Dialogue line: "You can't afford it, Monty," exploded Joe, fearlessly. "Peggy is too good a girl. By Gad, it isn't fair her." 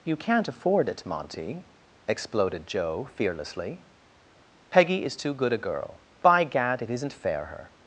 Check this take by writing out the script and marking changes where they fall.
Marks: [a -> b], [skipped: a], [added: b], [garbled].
"You can't afford it, Monty," exploded Joe, fearlessly. "Peggy is too good a girl. By Gad, it isn't fair her."